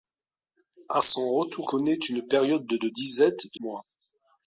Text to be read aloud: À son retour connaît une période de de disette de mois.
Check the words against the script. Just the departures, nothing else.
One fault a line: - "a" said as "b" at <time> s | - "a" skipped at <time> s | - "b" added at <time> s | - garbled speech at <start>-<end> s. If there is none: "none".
none